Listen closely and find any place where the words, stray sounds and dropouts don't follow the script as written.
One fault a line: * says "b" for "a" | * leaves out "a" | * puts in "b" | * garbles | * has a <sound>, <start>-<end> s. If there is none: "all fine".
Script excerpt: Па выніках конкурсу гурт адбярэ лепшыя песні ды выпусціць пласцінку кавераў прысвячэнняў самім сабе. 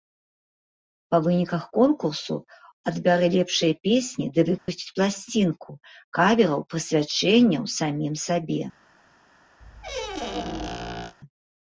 * leaves out "гурт"
* has a dropout, 4.6-4.7 s
* has a squeak, 9.6-11.1 s